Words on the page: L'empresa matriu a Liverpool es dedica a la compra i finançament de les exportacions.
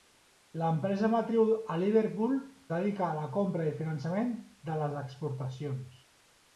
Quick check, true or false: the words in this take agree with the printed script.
false